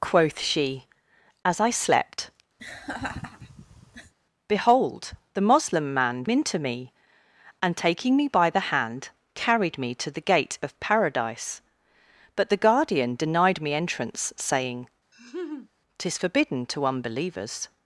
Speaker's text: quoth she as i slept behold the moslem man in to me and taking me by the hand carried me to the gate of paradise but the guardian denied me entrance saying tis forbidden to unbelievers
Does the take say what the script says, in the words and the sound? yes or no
no